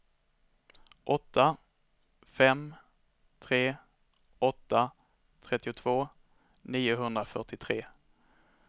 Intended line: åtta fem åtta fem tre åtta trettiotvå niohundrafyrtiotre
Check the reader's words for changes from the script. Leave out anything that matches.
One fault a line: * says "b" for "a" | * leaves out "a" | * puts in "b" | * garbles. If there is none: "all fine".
* leaves out "åtta fem"